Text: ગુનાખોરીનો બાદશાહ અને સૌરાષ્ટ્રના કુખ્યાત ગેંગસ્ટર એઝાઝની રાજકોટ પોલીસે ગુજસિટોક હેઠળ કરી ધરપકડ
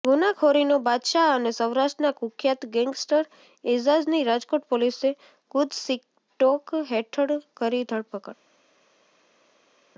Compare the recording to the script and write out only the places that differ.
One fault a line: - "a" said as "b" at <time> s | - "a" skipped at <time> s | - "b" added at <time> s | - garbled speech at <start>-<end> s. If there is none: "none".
none